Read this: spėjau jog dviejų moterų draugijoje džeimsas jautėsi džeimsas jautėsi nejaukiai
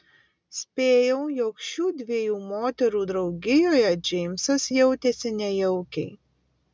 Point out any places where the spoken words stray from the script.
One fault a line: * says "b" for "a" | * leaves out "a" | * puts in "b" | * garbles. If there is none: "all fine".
* puts in "šių"
* leaves out "džeimsas jautėsi"